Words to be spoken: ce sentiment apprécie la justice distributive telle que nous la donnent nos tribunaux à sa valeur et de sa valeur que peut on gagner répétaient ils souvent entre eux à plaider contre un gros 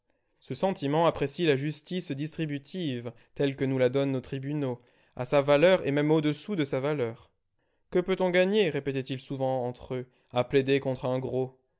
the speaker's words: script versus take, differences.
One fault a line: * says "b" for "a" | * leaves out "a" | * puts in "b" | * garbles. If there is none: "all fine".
* puts in "même au dessous"